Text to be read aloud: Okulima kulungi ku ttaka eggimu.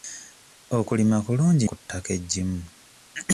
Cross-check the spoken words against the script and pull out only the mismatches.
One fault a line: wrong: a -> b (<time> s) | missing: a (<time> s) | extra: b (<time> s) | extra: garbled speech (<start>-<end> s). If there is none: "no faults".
no faults